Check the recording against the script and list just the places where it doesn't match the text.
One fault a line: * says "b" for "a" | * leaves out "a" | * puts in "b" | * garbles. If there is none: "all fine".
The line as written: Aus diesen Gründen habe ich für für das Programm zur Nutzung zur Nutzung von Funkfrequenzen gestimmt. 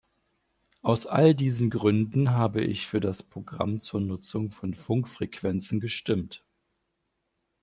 * puts in "all"
* leaves out "für"
* leaves out "zur Nutzung"